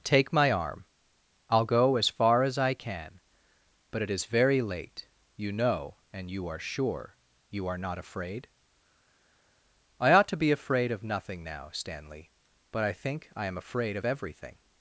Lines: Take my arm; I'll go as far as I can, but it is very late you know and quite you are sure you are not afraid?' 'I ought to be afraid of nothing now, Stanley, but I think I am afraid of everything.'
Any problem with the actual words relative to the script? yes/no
yes